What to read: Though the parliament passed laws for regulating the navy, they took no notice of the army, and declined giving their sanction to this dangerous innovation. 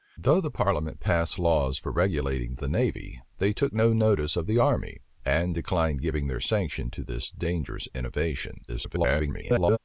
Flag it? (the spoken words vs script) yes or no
yes